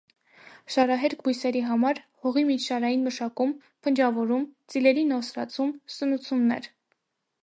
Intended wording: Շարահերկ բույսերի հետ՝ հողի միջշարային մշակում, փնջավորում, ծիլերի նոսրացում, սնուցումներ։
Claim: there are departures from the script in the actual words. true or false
true